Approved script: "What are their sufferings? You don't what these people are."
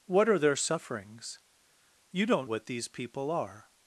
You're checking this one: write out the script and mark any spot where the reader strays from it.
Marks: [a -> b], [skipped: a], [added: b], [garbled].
"What are their sufferings? You don't what these people are."